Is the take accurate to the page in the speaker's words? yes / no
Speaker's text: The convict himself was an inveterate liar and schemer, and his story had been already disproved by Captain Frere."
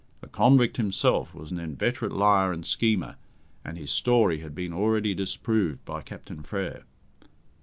yes